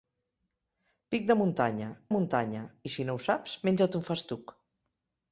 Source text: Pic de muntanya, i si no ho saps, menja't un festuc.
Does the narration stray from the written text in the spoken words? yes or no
yes